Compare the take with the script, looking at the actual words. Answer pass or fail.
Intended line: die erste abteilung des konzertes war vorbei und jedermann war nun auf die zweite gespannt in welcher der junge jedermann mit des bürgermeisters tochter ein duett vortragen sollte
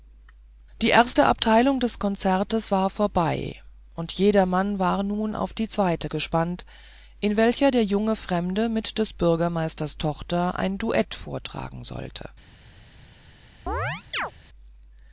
fail